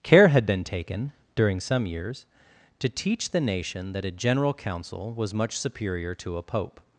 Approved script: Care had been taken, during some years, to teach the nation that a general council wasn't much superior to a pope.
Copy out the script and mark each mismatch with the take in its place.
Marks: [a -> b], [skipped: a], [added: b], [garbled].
Care had been taken, during some years, to teach the nation that a general council [wasn't -> was] much superior to a pope.